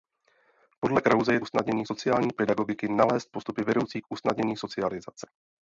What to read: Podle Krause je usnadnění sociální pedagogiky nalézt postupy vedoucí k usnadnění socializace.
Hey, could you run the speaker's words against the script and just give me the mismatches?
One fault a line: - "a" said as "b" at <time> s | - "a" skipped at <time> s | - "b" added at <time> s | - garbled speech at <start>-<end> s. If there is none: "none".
none